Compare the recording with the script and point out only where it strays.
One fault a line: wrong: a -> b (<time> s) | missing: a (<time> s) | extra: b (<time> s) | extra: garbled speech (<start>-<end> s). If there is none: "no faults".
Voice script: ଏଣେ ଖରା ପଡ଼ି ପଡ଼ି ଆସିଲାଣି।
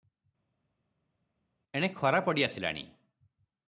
missing: ପଡ଼ି (2.4 s)